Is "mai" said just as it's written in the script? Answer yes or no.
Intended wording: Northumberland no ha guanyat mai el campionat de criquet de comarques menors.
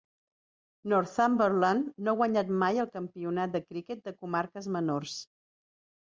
yes